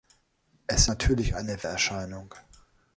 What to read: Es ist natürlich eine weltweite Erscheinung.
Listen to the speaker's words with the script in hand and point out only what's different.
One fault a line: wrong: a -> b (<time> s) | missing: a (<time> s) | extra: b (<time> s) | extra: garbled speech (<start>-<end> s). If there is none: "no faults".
missing: ist (0.9 s)
missing: weltweite (1.6 s)